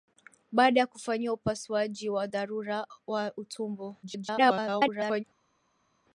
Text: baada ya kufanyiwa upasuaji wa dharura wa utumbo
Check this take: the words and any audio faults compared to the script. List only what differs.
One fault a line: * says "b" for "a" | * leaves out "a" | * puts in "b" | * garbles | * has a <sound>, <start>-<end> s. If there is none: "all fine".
* garbles